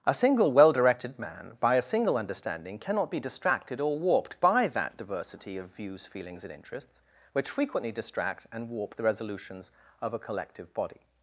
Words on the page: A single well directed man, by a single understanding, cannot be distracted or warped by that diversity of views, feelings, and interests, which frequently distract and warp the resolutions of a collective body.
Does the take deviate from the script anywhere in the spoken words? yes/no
no